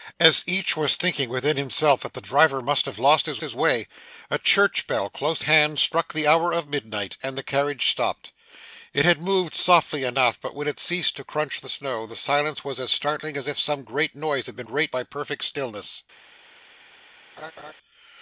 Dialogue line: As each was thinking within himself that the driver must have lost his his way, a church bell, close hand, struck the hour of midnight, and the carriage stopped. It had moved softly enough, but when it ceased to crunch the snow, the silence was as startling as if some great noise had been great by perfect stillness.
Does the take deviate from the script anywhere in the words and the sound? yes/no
yes